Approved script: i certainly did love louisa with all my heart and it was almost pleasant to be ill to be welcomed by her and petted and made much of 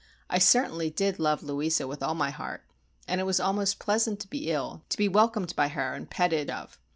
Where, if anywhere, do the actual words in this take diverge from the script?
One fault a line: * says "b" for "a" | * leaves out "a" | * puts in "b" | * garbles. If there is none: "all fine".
* leaves out "and made much"